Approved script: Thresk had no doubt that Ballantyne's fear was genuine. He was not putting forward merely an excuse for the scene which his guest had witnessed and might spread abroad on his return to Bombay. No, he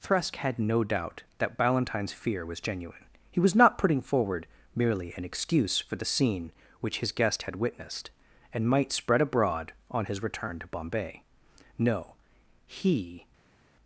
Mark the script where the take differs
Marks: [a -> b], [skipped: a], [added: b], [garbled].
Thresk had no doubt that Ballantyne's fear was genuine. He was not putting forward merely an excuse for the scene which his guest had witnessed and might spread abroad on his return to Bombay. No, he